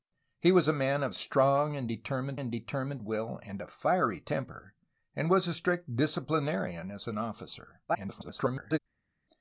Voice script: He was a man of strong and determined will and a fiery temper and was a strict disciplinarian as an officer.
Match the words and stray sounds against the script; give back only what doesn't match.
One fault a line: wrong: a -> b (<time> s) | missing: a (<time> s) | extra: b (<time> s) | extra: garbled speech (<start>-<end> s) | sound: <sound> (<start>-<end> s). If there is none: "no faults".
extra: and determined (2.4 s)
extra: garbled speech (7.9-8.8 s)